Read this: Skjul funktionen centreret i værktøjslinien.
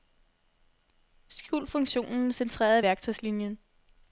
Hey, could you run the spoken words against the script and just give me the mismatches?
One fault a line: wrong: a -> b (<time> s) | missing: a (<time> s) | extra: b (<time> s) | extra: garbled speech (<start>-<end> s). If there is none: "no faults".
no faults